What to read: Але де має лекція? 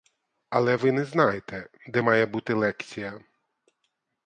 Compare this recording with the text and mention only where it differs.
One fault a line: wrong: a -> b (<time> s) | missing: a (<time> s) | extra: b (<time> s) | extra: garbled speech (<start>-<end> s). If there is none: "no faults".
extra: ви не знаєте (0.7 s)
extra: бути (2.3 s)